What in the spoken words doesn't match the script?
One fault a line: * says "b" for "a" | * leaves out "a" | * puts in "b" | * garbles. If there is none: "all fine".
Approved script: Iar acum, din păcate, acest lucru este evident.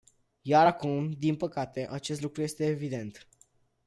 all fine